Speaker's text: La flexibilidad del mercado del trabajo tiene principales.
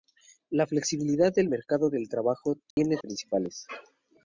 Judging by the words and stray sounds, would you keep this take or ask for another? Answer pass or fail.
fail